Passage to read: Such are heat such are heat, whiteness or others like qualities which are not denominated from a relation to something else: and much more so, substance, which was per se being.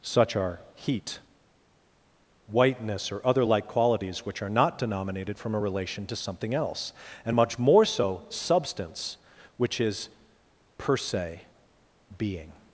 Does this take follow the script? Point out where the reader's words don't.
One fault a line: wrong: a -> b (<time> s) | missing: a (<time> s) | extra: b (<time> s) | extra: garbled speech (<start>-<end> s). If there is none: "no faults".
missing: such are heat (1.2 s)
wrong: others -> other (3.2 s)
wrong: was -> is (9.8 s)